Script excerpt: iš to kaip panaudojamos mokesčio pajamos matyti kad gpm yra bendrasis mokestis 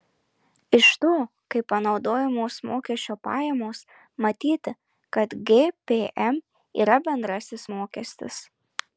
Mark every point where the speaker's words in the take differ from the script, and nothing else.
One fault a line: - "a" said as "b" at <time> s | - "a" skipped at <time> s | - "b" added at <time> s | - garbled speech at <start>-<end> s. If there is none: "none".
none